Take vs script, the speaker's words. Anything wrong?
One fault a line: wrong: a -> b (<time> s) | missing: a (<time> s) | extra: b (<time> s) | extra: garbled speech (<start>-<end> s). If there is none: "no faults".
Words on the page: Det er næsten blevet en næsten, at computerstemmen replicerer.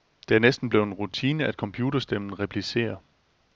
wrong: næsten -> rutine (0.9 s)